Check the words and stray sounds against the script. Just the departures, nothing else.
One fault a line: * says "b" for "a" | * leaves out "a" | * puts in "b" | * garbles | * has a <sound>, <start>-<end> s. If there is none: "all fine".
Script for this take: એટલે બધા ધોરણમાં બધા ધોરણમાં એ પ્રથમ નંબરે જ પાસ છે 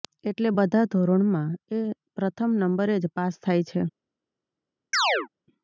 * leaves out "બધા ધોરણમાં"
* puts in "થાય"
* has a chirp, 4.9-5.3 s